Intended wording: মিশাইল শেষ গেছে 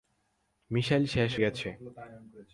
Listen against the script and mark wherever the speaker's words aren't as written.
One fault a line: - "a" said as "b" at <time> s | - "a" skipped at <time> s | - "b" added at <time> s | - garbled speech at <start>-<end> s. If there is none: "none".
none